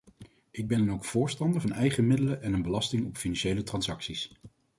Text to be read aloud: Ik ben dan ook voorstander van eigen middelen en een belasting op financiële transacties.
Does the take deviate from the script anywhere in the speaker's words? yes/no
no